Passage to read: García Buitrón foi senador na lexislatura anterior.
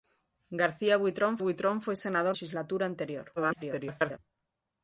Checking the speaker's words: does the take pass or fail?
fail